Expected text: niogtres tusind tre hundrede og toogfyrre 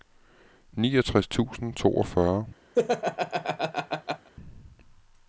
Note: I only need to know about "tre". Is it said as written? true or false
false